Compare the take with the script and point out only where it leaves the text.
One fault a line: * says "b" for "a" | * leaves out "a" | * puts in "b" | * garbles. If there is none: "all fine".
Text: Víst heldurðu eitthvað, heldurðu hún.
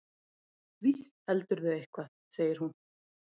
* says "segir" for "heldurðu"